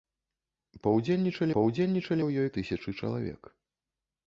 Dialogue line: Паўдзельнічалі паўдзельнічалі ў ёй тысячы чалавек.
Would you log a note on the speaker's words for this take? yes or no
no